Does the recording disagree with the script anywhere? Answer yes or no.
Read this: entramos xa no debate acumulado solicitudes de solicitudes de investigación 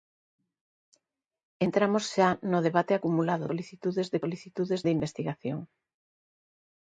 no